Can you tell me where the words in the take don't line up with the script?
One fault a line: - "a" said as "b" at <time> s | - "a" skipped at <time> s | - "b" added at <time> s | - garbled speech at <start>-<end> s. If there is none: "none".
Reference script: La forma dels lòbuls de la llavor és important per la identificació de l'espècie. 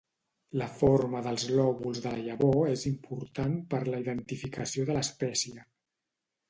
none